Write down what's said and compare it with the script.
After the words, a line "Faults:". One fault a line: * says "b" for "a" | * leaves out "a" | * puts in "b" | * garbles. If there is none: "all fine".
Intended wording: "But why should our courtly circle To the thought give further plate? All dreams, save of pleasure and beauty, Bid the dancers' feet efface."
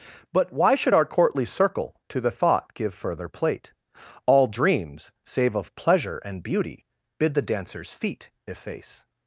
"But why should our courtly circle To the thought give further plate? All dreams, save of pleasure and beauty, Bid the dancers' feet efface."
Faults:
all fine